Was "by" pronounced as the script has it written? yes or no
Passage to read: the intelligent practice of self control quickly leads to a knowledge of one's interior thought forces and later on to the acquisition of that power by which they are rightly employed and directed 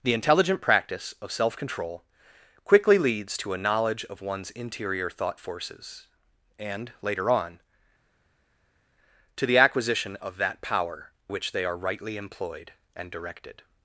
no